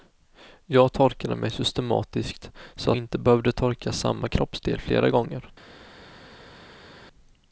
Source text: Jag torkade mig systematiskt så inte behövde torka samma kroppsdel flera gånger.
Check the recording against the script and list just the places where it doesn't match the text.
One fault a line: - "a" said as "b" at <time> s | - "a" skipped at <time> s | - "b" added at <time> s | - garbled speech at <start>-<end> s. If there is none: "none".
none